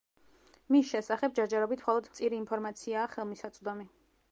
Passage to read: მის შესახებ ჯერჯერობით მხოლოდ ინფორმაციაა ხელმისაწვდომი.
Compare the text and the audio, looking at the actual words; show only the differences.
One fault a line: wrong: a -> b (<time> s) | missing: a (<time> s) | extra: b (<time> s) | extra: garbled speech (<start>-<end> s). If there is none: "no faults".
extra: მწირი (2.1 s)